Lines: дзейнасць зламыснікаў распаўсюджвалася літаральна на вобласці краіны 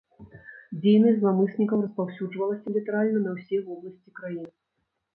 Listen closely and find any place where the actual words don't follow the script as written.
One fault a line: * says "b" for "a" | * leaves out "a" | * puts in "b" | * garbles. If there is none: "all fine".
* puts in "ўсе"